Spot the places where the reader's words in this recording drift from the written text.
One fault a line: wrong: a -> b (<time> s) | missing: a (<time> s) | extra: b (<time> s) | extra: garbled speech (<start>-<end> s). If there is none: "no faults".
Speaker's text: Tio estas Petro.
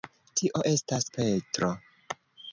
no faults